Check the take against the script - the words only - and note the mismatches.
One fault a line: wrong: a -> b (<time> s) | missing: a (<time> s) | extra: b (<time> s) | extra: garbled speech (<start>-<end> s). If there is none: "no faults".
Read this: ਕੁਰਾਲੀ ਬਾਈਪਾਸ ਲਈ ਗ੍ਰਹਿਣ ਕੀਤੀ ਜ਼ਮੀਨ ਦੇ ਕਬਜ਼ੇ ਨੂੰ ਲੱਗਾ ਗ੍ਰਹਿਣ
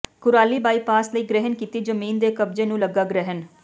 no faults